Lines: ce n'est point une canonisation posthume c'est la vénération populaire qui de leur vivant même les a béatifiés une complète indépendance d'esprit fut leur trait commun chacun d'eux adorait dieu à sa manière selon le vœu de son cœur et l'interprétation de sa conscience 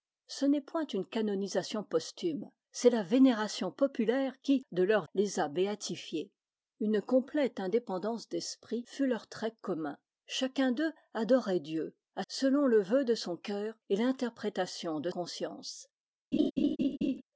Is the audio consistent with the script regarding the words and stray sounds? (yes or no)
no